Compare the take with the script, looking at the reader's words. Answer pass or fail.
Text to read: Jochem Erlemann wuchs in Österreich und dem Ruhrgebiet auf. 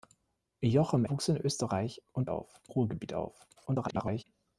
fail